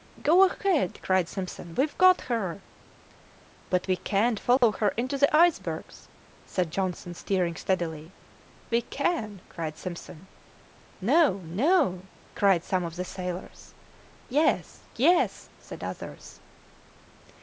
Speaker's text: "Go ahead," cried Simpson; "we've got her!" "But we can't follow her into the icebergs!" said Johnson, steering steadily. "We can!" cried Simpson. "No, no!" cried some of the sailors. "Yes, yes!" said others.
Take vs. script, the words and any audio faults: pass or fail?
fail